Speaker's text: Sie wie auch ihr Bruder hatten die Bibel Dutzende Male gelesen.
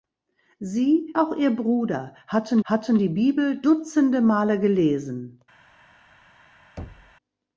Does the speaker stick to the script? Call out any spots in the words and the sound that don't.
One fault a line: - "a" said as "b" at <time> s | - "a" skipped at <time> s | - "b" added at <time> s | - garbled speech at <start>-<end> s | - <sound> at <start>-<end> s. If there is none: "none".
- "wie" skipped at 1.1 s
- "hatten" added at 2.6 s
- thud at 6.8-7.1 s